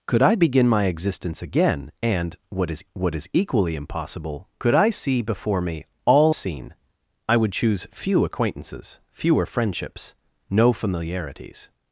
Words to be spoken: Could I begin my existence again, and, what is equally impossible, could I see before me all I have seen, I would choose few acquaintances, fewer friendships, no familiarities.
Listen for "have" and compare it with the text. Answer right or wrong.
wrong